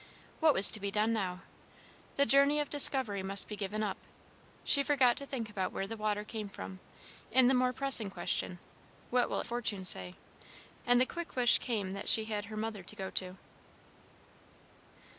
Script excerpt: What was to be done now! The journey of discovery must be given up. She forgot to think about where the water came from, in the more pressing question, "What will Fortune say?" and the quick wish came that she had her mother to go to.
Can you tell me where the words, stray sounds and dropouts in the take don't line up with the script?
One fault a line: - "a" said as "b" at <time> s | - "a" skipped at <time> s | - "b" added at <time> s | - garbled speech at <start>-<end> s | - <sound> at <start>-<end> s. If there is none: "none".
none